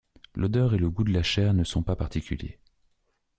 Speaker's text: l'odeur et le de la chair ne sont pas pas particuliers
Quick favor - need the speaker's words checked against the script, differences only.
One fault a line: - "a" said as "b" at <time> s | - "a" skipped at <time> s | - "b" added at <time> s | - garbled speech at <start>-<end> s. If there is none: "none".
- "goût" added at 0.9 s
- "pas" skipped at 1.9 s